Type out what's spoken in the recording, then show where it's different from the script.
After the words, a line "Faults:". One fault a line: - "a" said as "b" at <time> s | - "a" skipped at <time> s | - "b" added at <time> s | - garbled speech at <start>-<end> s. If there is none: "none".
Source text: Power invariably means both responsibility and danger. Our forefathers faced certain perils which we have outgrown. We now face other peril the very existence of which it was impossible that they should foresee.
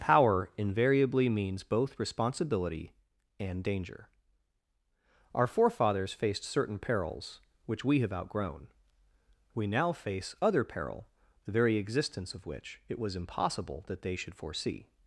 Power invariably means both responsibility and danger. Our forefathers faced certain perils which we have outgrown. We now face other peril the very existence of which it was impossible that they should foresee.
Faults:
none